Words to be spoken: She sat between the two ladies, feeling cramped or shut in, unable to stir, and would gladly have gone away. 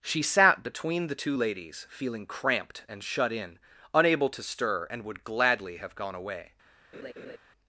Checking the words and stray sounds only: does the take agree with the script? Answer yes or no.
no